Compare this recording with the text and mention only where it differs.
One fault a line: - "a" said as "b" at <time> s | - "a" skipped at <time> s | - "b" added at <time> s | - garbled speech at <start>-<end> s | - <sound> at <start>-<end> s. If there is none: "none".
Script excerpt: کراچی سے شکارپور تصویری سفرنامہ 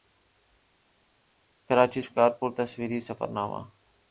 - "سے" skipped at 2.0 s